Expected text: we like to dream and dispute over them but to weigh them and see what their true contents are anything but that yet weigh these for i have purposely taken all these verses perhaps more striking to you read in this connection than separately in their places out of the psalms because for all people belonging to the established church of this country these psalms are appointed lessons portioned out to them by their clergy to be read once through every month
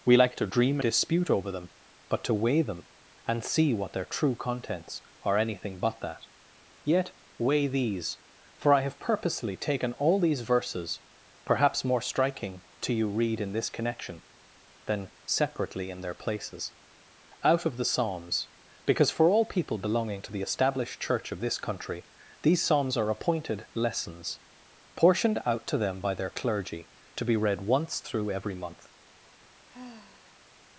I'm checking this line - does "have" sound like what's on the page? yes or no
yes